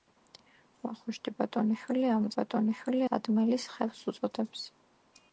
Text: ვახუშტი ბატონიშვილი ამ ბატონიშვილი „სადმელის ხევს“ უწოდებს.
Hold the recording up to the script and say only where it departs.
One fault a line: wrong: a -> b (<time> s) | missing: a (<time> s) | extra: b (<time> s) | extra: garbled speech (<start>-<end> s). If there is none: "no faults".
no faults